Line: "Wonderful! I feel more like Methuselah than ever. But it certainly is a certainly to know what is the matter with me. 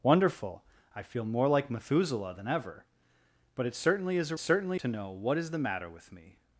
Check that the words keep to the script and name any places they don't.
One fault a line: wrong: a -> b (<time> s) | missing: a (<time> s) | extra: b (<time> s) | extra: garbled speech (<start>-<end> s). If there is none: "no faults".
no faults